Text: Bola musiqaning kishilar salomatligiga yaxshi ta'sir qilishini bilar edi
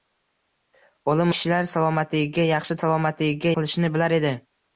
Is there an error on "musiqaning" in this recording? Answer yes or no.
yes